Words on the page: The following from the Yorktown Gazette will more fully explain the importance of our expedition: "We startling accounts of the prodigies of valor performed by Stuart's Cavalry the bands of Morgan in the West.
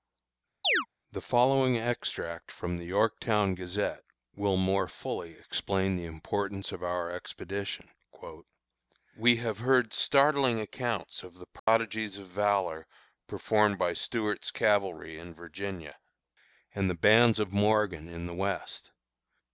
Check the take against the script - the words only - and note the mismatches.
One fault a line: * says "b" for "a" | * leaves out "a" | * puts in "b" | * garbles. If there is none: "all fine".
* puts in "extract"
* puts in "have heard"
* puts in "in Virginia and"